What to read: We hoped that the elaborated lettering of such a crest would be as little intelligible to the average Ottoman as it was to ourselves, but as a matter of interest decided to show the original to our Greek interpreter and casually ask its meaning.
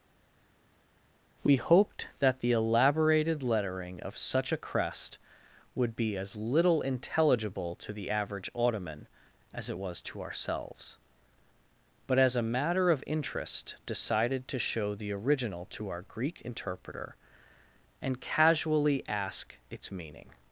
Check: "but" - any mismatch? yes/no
no